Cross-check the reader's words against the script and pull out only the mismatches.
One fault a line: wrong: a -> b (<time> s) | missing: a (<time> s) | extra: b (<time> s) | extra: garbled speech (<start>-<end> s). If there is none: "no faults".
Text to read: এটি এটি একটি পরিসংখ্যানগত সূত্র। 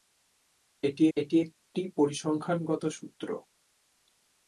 no faults